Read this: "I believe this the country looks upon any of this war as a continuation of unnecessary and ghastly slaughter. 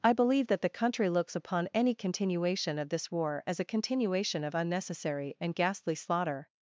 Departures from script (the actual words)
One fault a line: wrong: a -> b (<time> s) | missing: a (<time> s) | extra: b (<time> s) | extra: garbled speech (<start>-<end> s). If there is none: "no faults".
wrong: this -> that (0.5 s)
extra: continuation (1.9 s)